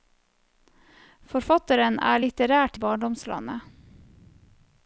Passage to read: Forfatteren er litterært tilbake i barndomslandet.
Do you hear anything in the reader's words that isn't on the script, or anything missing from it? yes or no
yes